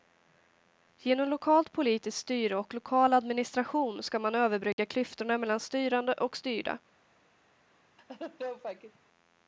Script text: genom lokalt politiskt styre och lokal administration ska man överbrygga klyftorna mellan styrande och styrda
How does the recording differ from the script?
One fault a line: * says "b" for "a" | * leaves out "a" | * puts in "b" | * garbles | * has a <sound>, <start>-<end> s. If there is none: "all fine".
* has a dropout, 4.7-4.8 s
* has a laugh, 8.0-9.0 s